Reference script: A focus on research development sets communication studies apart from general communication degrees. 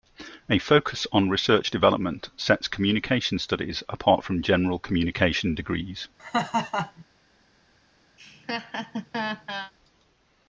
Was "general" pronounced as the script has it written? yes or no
yes